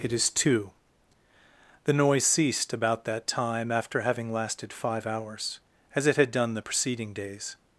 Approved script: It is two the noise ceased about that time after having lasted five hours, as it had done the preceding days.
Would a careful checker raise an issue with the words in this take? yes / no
no